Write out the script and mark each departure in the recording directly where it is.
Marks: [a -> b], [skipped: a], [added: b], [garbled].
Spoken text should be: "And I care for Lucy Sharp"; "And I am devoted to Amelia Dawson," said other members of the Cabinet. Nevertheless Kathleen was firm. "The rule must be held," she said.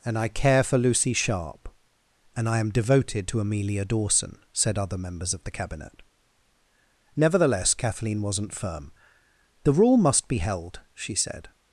"And I care for Lucy Sharp"; "And I am devoted to Amelia Dawson," said other members of the Cabinet. Nevertheless Kathleen [was -> wasn't] firm. "The rule must be held," she said.